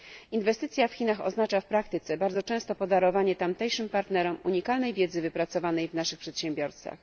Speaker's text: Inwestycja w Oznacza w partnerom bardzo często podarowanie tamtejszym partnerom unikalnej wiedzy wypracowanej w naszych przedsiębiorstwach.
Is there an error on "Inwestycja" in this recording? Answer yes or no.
no